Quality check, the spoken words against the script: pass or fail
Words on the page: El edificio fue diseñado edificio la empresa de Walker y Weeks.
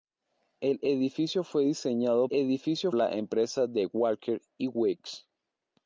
pass